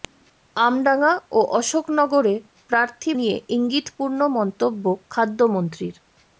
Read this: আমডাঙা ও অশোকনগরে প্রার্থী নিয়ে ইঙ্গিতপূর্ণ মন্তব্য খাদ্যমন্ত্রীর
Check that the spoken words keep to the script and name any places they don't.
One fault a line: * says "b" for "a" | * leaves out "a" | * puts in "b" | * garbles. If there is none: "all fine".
all fine